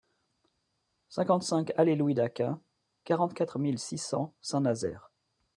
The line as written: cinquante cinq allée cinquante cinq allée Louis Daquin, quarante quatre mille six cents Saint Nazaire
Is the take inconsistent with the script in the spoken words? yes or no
yes